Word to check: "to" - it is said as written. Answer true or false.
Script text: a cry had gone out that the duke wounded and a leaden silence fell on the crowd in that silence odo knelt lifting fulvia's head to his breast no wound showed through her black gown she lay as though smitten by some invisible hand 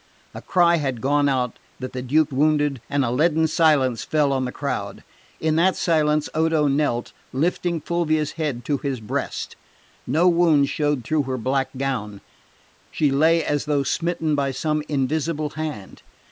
true